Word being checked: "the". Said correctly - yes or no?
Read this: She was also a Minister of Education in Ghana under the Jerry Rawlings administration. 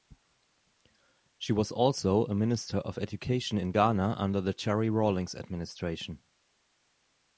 yes